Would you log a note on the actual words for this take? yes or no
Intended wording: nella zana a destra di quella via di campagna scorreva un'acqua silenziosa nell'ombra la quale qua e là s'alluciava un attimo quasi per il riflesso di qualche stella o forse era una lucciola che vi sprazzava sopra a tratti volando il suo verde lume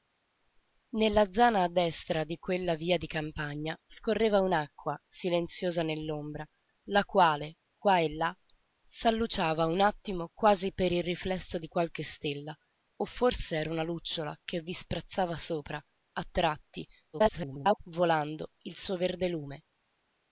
yes